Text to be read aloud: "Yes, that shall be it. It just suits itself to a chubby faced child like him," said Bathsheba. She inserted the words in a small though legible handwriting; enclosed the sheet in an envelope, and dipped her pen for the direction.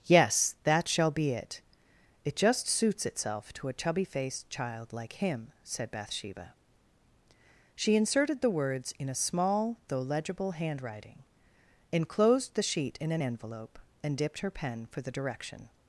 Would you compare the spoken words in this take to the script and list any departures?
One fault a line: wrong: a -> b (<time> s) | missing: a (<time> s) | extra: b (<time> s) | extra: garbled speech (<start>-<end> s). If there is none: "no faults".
no faults